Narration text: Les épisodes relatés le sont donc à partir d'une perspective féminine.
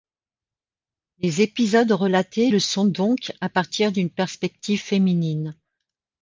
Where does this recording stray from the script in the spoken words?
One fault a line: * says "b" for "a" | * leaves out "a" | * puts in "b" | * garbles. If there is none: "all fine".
all fine